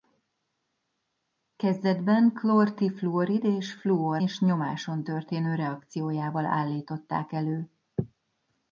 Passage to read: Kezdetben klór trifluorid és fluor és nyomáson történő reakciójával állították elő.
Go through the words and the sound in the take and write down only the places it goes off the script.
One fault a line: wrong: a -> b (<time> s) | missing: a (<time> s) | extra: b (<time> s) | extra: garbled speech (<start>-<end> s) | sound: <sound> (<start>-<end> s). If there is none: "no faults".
no faults